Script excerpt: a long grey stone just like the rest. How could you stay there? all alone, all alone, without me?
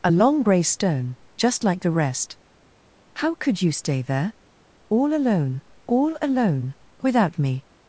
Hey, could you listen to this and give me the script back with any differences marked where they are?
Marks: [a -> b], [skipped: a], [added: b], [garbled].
a long grey stone just like the rest. How could you stay there? all alone, all alone, without me?